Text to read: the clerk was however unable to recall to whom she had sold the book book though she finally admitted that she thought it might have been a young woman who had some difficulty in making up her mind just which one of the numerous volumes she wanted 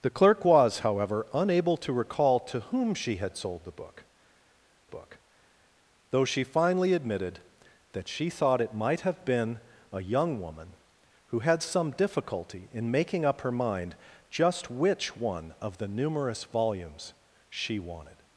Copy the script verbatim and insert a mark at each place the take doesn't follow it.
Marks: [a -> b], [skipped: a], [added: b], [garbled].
the clerk was however unable to recall to whom she had sold the book book though she finally admitted that she thought it might have been a young woman who had some difficulty in making up her mind just which one of the numerous volumes she wanted